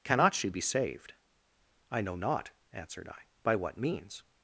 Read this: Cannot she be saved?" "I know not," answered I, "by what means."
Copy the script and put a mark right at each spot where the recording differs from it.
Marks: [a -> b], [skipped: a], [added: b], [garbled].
Cannot she be saved?" "I know not," answered I, "by what means."